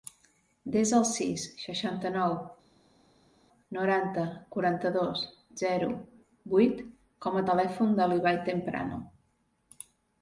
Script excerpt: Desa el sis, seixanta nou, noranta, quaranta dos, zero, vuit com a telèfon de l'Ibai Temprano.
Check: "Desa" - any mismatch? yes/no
no